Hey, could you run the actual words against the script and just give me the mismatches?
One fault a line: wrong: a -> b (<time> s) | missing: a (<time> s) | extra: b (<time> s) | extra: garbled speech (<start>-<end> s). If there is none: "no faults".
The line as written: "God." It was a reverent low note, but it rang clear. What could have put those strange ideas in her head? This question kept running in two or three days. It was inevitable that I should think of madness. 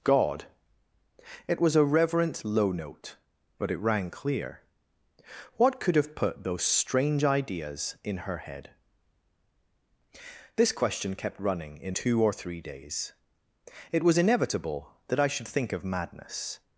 no faults